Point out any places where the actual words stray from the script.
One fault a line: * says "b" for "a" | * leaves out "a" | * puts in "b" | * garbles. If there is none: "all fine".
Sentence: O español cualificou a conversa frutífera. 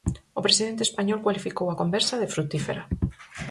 * puts in "presidente"
* puts in "de"